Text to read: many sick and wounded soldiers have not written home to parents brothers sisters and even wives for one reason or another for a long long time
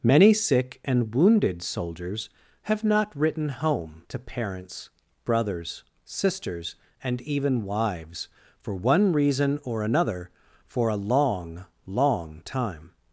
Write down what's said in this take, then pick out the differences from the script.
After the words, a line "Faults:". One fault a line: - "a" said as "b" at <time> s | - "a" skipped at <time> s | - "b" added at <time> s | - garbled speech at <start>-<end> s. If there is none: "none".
many sick and wounded soldiers have not written home to parents brothers sisters and even wives for one reason or another for a long long time
Faults:
none